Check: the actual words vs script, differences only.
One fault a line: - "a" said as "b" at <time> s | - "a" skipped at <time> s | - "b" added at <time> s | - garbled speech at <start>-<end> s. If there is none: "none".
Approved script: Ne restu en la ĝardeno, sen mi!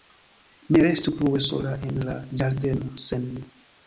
- "plue sola" added at 1.2 s